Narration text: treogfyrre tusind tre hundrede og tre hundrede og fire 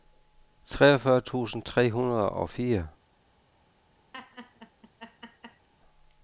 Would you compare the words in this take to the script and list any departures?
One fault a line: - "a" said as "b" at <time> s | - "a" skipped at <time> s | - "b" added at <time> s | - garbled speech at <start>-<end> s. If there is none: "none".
- "tre hundrede og" skipped at 2.5 s